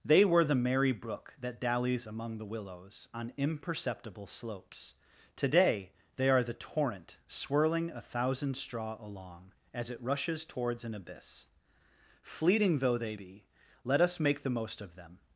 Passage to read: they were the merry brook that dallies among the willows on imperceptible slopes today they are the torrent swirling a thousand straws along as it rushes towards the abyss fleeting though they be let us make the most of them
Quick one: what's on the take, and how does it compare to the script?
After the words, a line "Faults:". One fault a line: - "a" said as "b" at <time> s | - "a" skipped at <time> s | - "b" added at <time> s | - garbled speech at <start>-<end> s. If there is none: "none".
they were the merry brook that dallies among the willows on imperceptible slopes today they are the torrent swirling a thousand straw along as it rushes towards an abyss fleeting though they be let us make the most of them
Faults:
- "straws" said as "straw" at 8.6 s
- "the" said as "an" at 10.8 s